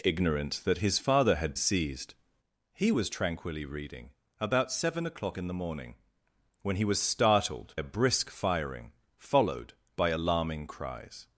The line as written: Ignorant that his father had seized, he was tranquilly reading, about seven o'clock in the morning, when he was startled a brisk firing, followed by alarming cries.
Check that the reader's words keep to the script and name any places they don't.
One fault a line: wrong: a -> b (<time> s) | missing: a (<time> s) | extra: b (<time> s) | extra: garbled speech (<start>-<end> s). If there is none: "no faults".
no faults